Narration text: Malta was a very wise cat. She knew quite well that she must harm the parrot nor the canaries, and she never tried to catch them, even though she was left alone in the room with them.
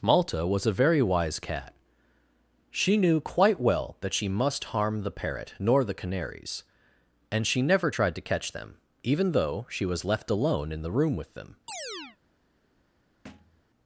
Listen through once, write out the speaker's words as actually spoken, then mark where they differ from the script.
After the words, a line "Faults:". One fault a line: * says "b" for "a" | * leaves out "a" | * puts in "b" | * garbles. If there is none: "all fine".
Malta was a very wise cat. She knew quite well that she must harm the parrot nor the canaries, and she never tried to catch them, even though she was left alone in the room with them.
Faults:
all fine